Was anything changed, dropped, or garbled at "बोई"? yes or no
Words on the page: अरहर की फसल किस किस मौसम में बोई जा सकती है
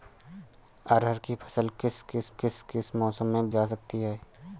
yes